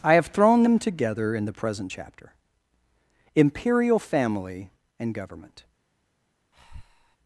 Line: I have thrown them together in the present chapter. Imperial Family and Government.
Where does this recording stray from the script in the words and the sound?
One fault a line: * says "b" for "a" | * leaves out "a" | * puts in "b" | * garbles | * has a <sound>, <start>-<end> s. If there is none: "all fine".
* has a breath, 6.5-7.2 s